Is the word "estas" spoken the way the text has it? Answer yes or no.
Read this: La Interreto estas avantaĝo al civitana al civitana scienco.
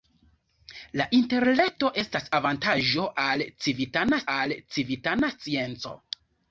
yes